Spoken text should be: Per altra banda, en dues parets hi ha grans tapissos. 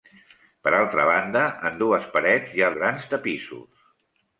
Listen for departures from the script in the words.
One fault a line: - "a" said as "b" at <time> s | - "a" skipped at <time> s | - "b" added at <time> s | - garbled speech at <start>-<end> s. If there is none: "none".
none